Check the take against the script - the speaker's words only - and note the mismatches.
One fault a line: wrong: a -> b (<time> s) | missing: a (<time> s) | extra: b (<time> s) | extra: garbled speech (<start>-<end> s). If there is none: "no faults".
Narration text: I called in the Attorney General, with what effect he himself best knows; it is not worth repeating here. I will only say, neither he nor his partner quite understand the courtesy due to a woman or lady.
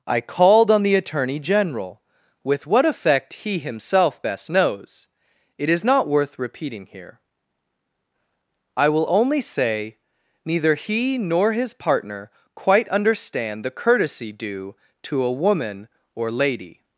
wrong: in -> on (0.7 s)